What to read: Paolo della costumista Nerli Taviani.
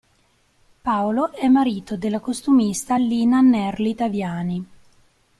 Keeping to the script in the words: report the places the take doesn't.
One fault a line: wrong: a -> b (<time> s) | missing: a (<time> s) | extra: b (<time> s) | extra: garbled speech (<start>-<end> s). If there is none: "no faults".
extra: è marito (1.3 s)
extra: Lina (3.0 s)